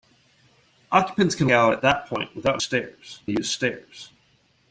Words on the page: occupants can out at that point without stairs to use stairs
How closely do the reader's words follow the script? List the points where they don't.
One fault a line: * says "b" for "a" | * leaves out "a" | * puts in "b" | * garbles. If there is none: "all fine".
all fine